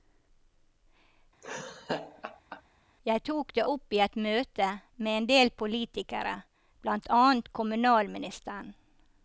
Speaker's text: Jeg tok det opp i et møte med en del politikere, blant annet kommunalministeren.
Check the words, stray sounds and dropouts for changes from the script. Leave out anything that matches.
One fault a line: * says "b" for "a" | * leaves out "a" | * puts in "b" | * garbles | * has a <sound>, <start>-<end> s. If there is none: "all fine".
* has a laugh, 1.4-2.6 s